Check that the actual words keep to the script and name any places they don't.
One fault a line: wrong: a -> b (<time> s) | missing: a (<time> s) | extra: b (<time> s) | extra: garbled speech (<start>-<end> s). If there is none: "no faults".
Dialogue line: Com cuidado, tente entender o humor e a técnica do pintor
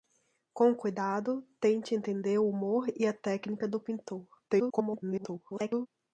extra: garbled speech (4.5-5.9 s)